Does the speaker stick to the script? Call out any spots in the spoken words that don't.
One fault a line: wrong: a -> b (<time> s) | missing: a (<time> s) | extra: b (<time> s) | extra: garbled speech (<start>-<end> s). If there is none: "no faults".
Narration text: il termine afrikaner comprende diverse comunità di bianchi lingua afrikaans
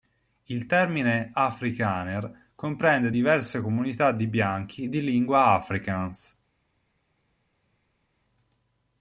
extra: di (4.9 s)